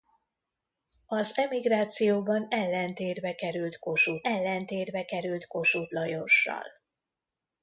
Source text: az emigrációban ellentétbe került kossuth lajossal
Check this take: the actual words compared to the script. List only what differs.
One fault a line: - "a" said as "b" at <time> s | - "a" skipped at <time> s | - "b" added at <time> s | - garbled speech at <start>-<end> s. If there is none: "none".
- "ellentétbe került kossuth" added at 4.2 s